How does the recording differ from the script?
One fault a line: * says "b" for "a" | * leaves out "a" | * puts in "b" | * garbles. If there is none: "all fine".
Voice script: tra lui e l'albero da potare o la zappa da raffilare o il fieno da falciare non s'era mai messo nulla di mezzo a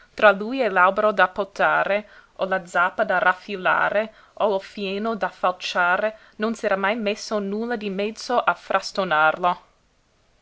all fine